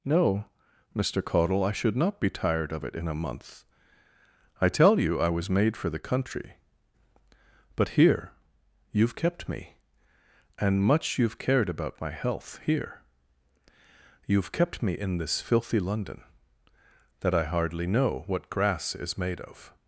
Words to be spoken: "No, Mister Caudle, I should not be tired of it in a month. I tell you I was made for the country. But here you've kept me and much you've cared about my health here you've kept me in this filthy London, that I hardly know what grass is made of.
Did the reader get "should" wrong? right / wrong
right